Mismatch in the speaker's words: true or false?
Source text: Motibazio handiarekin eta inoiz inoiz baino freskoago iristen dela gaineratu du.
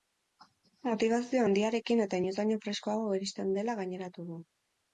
true